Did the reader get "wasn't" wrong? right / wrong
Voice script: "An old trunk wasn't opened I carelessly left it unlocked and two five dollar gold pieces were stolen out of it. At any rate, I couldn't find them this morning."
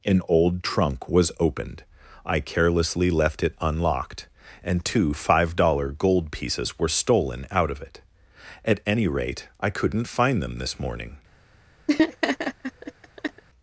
wrong